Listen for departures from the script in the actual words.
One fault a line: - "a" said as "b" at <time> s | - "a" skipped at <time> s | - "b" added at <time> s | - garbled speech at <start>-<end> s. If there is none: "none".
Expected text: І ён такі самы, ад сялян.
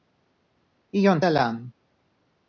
- "такі самы ад" skipped at 1.2 s